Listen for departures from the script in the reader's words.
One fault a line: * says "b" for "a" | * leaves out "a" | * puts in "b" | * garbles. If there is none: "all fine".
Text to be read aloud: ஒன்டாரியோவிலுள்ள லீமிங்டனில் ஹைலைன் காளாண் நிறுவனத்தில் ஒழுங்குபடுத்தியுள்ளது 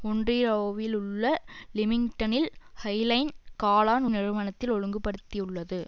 all fine